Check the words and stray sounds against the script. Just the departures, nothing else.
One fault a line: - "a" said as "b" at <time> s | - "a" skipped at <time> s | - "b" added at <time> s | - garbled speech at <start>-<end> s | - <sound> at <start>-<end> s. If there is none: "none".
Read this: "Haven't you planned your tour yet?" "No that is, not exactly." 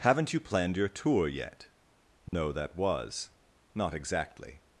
- dropout at 2.3-2.3 s
- "is" said as "was" at 2.8 s